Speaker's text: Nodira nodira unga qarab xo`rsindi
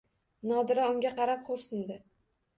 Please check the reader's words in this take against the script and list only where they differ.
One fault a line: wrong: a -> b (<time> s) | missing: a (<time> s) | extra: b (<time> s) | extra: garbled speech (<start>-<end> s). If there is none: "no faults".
missing: nodira (0.9 s)